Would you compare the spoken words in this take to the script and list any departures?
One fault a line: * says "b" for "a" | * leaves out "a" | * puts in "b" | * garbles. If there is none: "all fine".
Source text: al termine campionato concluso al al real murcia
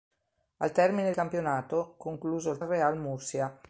all fine